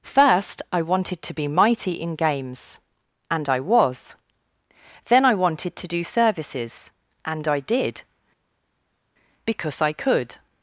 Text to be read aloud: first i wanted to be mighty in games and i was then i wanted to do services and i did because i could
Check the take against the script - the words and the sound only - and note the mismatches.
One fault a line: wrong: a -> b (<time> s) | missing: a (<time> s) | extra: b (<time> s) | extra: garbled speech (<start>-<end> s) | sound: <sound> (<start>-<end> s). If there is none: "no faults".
no faults